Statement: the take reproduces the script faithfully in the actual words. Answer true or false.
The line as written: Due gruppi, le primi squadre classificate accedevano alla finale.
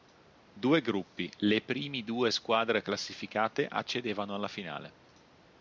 false